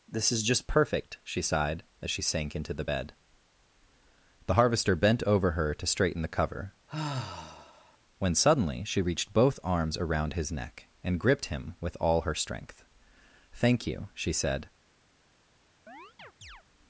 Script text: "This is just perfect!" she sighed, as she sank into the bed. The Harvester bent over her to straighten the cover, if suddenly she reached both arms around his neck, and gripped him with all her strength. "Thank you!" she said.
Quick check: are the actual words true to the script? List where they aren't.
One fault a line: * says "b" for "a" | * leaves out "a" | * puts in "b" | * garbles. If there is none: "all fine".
* says "when" for "if"